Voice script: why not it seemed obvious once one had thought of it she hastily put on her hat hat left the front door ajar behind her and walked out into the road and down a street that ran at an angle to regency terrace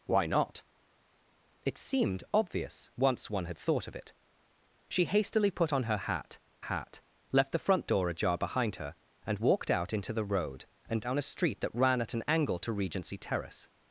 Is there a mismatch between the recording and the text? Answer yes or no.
no